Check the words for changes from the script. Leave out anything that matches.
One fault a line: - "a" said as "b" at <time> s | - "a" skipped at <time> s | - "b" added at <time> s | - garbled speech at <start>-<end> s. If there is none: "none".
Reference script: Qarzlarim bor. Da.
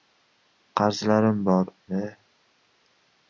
none